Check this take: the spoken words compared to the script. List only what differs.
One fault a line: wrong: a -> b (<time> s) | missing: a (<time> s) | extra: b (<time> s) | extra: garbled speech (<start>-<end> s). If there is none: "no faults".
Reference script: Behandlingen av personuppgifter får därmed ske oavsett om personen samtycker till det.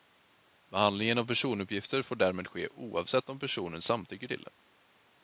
no faults